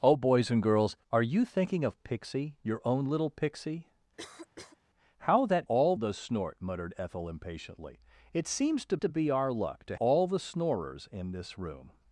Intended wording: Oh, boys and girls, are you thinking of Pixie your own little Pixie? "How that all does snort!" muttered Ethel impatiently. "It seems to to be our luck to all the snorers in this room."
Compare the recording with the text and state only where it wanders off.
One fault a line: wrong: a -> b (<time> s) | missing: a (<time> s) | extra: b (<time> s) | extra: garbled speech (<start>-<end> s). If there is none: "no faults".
no faults